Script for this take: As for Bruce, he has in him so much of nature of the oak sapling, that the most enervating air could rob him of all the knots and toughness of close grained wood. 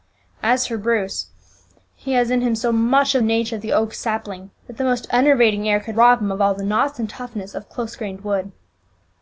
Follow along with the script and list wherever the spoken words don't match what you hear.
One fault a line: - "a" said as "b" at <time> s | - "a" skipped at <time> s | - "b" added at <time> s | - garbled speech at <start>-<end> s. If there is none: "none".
none